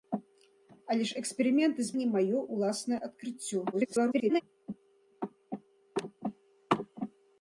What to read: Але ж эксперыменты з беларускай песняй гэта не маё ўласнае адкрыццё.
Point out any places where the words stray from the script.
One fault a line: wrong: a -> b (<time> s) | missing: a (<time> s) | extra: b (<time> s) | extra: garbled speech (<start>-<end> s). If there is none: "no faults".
missing: беларускай песняй гэта (1.9 s)
extra: garbled speech (3.7-4.4 s)